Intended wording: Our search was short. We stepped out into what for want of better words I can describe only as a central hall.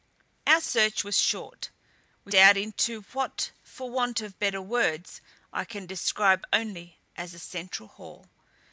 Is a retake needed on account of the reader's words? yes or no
yes